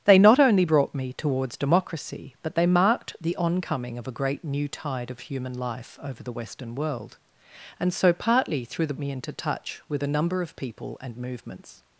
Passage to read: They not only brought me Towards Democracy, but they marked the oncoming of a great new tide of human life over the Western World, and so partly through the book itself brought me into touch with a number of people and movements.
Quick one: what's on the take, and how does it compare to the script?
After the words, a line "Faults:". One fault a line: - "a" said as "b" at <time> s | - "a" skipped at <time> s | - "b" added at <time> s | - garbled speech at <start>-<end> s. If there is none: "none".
They not only brought me Towards Democracy, but they marked the oncoming of a great new tide of human life over the Western World, and so partly through the me into touch with a number of people and movements.
Faults:
- "book itself brought" skipped at 8.9 s